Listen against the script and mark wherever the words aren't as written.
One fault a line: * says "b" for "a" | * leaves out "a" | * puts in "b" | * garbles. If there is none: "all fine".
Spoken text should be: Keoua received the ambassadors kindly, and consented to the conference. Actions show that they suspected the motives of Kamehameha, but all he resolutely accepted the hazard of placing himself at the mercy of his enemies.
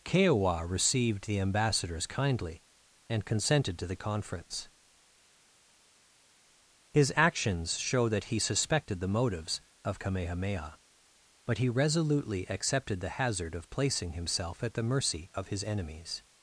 * puts in "His"
* says "he" for "they"
* leaves out "all"